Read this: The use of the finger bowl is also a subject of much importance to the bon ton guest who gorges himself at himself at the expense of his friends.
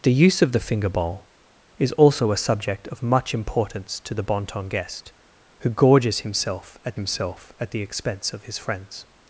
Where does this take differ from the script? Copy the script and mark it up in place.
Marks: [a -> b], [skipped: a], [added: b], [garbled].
The use of the finger bowl is also a subject of much importance to the bon ton guest who gorges himself at himself at the expense of his friends.